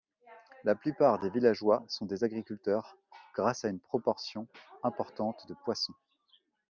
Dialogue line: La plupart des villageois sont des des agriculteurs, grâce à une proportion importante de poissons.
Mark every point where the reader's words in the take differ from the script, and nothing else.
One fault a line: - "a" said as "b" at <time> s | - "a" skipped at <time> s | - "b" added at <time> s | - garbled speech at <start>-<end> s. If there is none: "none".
- "des" skipped at 2.2 s